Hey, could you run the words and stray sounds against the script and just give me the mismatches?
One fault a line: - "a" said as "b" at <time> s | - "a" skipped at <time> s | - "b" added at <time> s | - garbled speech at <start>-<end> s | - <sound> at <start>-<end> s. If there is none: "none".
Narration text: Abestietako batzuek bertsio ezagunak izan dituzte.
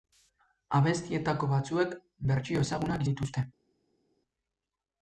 - "izan" skipped at 3.0 s